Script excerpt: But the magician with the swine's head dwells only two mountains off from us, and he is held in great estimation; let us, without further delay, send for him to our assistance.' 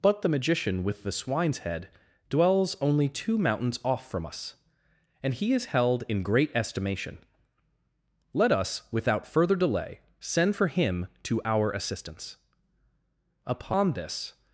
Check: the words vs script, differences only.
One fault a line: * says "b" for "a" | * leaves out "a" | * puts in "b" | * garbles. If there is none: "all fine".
* puts in "Upon this"